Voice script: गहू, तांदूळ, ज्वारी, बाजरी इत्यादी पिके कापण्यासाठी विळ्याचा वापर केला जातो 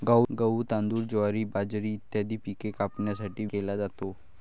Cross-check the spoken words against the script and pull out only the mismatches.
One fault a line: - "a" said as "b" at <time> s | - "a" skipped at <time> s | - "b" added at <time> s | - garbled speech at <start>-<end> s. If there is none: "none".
- "विळ्याचा वापर" skipped at 3.5 s